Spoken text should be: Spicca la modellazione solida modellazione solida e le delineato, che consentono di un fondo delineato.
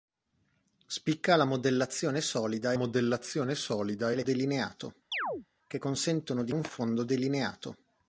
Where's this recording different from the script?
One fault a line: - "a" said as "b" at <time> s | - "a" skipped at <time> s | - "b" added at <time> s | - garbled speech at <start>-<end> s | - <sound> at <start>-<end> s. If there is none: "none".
- chirp at 5.1-5.5 s